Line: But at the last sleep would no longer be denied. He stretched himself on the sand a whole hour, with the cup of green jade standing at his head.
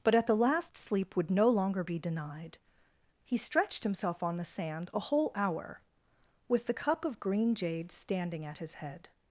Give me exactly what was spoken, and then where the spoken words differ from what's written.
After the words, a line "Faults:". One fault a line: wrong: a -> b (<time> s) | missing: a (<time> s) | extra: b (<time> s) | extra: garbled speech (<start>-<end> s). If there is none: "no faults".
But at the last sleep would no longer be denied. He stretched himself on the sand a whole hour, with the cup of green jade standing at his head.
Faults:
no faults